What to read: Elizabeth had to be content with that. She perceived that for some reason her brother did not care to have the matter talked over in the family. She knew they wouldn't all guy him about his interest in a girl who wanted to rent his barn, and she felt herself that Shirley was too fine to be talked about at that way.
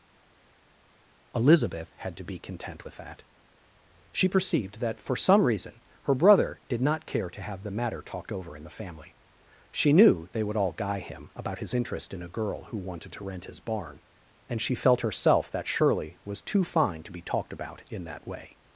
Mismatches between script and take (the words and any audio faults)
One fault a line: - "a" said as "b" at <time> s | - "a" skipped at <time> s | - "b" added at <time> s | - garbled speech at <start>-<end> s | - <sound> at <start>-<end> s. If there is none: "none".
- "wouldn't" said as "would" at 10.4 s
- "at" said as "in" at 17.9 s